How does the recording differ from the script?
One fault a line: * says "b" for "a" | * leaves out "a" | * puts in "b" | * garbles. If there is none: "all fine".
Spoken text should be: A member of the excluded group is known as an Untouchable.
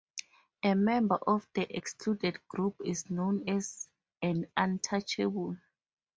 all fine